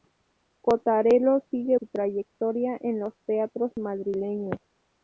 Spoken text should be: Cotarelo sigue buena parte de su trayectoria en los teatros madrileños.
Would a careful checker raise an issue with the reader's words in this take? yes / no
yes